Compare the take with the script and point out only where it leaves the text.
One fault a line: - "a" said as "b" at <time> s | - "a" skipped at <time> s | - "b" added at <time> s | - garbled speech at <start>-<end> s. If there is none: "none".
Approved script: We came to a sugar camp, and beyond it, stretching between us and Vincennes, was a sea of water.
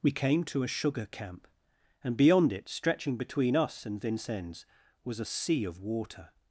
none